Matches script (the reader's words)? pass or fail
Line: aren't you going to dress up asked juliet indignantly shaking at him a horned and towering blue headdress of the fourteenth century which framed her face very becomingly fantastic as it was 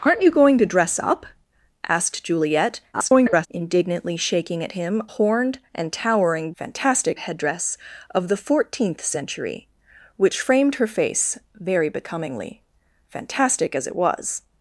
fail